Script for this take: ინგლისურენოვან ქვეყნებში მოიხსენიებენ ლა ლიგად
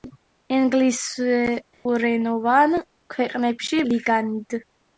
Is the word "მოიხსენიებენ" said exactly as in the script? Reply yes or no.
no